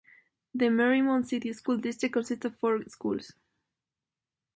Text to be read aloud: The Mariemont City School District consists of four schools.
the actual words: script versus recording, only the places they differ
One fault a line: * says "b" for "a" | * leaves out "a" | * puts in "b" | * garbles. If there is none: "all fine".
all fine